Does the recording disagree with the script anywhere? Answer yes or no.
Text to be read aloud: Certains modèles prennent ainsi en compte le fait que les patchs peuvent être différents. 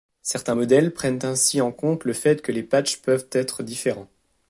no